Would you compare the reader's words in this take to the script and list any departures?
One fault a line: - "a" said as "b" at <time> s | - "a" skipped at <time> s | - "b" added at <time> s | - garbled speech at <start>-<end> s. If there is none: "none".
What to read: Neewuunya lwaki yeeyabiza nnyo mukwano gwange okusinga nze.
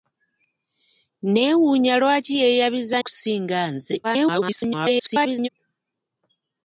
- "nnyo mukwano gwange" skipped at 3.0 s
- garbled speech at 4.0-5.5 s